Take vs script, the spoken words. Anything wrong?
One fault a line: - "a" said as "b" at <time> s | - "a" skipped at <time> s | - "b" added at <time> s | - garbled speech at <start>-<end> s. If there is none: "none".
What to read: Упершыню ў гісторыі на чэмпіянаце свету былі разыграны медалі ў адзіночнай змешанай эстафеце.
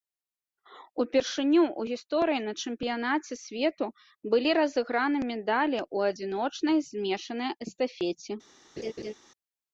none